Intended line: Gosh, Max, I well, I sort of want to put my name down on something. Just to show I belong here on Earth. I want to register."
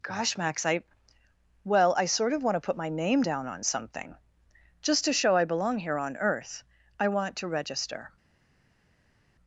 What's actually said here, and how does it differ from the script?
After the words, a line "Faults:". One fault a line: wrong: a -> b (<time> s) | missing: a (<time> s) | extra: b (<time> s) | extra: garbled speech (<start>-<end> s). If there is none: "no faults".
Gosh, Max, I well, I sort of want to put my name down on something. Just to show I belong here on Earth. I want to register."
Faults:
no faults